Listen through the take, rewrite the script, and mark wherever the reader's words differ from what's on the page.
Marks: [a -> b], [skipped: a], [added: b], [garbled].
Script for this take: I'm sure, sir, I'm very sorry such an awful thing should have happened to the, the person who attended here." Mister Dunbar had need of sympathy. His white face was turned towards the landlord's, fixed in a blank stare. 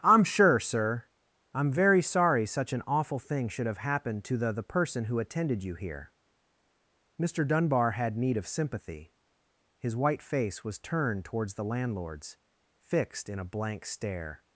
I'm sure, sir, I'm very sorry such an awful thing should have happened to the, the person who attended [added: you] here." Mister Dunbar had need of sympathy. His white face was turned towards the landlord's, fixed in a blank stare.